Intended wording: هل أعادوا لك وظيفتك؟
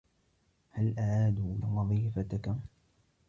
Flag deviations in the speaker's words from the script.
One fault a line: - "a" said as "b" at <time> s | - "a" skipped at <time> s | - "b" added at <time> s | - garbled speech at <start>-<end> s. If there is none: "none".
- "لك" skipped at 1.6 s